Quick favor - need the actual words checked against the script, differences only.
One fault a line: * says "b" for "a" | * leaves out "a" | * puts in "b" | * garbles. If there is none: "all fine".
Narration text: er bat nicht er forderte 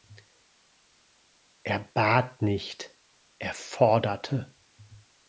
all fine